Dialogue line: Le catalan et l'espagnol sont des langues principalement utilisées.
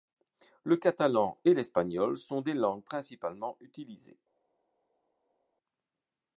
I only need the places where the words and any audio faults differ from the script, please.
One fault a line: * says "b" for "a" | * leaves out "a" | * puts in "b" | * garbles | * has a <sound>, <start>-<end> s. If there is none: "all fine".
all fine